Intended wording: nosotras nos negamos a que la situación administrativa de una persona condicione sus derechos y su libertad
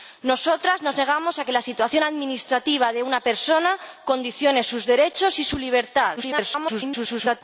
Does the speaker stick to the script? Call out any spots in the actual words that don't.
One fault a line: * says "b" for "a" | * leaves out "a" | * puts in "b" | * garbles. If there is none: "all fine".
* garbles